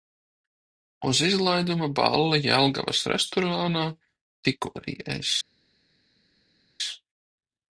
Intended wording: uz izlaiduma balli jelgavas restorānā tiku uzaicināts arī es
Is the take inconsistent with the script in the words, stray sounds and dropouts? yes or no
yes